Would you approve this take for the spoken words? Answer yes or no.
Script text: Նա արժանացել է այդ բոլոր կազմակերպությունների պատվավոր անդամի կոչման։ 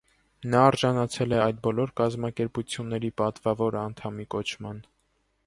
yes